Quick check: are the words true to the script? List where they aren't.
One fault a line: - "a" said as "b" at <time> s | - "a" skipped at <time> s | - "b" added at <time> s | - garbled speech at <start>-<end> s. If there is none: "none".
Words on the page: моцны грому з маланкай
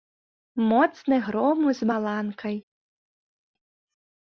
none